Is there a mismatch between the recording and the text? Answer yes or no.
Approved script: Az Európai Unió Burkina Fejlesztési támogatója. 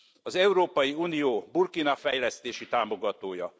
no